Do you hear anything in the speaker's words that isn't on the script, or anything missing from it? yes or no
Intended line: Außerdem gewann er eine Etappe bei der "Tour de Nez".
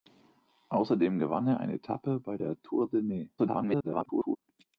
yes